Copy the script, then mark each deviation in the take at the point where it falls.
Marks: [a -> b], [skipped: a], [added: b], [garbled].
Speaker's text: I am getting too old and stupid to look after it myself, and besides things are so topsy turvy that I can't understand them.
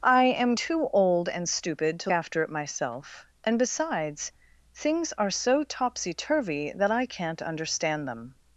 I am [skipped: getting] too old and stupid to [skipped: look] after it myself, and besides things are so topsy turvy that I can't understand them.